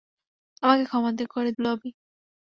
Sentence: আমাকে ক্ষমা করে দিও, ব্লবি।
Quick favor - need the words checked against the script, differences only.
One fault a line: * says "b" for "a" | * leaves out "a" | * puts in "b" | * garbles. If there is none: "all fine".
* leaves out "দিও"